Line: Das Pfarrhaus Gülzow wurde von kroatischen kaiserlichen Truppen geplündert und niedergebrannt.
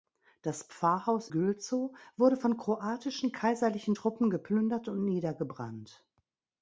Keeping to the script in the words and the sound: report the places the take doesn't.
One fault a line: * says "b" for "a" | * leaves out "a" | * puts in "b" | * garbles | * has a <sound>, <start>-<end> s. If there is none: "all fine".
all fine